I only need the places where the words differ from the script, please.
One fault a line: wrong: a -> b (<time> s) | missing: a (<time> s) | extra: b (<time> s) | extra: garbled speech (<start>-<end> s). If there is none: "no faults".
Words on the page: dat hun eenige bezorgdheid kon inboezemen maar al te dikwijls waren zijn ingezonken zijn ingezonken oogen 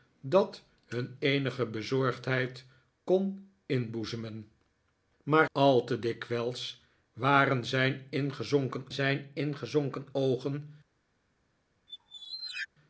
no faults